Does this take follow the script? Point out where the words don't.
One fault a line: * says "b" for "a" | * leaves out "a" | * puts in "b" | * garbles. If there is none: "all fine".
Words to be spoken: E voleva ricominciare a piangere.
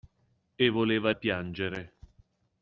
* leaves out "ricominciare"